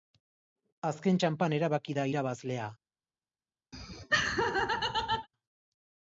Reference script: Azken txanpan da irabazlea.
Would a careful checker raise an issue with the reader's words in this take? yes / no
yes